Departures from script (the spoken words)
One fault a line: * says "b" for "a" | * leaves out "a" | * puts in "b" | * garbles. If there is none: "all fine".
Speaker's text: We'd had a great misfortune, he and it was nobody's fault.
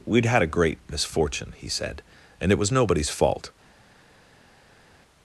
* puts in "said"